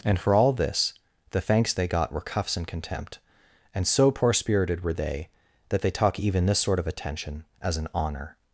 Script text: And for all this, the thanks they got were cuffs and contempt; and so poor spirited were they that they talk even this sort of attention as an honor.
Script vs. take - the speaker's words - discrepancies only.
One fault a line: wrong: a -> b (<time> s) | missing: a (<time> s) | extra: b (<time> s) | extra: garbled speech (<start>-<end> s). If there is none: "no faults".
no faults